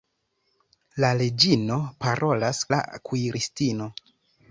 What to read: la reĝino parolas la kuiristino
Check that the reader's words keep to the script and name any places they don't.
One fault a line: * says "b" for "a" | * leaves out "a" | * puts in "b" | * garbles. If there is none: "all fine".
all fine